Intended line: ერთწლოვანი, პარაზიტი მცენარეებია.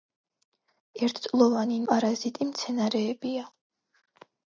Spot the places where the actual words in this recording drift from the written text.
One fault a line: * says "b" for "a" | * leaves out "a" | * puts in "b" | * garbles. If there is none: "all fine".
all fine